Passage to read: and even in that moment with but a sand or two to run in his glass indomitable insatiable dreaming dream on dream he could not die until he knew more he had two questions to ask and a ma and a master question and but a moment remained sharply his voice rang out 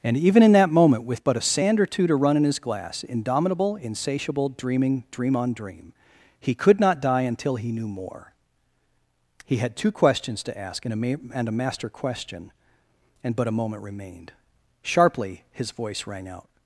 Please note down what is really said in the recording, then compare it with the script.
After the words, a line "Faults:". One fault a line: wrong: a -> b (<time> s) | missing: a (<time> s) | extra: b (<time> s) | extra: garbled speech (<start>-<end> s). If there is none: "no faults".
and even in that moment with but a sand or two to run in his glass indomitable insatiable dreaming dream on dream he could not die until he knew more he had two questions to ask and a ma and a master question and but a moment remained sharply his voice rang out
Faults:
no faults